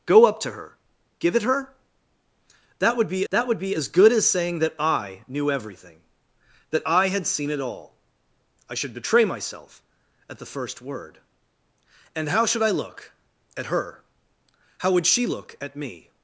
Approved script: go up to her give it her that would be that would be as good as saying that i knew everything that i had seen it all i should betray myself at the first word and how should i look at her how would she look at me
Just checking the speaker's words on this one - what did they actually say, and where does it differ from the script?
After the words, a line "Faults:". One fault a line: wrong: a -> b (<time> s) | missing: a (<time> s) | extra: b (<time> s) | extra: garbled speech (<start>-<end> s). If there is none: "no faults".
go up to her give it her that would be that would be as good as saying that i knew everything that i had seen it all i should betray myself at the first word and how should i look at her how would she look at me
Faults:
no faults